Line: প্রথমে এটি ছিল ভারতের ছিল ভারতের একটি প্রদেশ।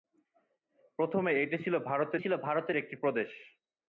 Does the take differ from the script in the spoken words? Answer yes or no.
no